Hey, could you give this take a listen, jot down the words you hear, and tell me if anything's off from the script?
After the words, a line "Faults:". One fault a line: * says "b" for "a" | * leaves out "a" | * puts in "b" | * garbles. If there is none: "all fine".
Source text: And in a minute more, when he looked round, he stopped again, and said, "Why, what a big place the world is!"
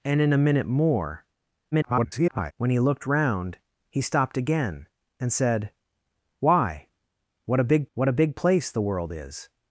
And in a minute more, [garbled] when he looked round, he stopped again, and said, "Why, what a big what a big place the world is!"
Faults:
* garbles
* puts in "what a big"